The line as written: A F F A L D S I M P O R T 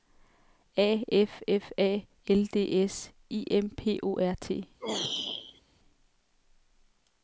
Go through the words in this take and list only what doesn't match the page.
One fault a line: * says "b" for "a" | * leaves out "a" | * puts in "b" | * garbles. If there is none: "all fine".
all fine